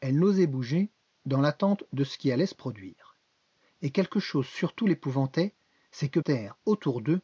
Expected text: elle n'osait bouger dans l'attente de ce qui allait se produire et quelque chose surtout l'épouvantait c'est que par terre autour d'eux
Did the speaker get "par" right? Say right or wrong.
wrong